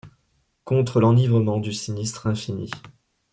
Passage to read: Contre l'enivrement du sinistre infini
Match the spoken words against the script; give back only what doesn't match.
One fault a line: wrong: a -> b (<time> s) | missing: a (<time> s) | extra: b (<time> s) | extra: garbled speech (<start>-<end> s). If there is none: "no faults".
no faults